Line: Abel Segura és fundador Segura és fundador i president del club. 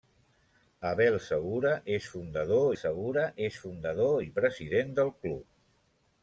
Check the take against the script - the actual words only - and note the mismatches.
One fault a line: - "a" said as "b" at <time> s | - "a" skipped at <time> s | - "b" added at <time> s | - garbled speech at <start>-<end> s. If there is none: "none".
none